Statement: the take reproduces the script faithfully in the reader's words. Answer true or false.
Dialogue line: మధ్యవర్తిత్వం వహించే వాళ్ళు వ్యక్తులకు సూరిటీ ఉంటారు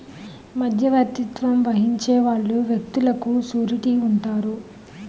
true